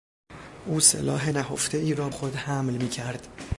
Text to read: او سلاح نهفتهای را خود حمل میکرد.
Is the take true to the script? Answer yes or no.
yes